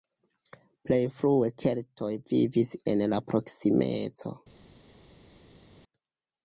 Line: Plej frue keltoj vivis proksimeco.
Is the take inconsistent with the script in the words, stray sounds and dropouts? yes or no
yes